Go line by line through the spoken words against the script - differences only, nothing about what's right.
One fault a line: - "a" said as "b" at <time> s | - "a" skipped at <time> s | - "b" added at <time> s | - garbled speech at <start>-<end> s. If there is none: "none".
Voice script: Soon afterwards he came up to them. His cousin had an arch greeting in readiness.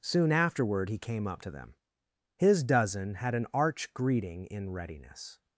- "afterwards" said as "afterward" at 0.3 s
- "cousin" said as "dozen" at 2.6 s